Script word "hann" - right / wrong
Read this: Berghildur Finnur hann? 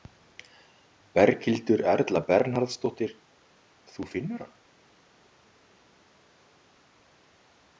right